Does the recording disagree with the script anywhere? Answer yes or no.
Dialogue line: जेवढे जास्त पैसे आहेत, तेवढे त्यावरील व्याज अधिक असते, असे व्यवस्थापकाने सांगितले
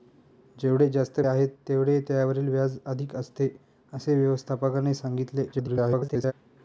yes